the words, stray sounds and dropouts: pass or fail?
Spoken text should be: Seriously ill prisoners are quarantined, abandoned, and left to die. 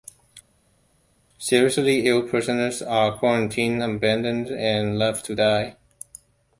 pass